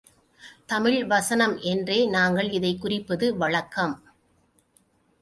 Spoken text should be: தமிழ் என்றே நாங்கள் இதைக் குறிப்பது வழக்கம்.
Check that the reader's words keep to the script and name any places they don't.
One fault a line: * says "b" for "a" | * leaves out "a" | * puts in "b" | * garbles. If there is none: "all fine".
* puts in "வசனம்"